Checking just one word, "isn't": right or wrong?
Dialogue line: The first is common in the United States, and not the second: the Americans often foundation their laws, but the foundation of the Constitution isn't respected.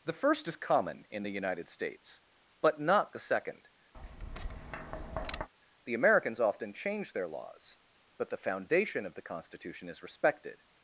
wrong